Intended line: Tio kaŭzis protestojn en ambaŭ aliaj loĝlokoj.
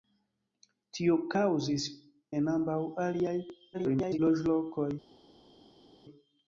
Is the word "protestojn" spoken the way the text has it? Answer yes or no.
no